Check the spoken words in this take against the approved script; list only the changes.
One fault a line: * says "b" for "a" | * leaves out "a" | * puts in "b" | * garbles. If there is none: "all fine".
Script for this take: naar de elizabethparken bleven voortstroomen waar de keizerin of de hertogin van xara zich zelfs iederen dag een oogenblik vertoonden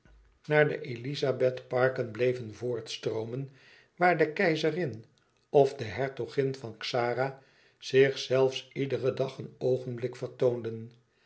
all fine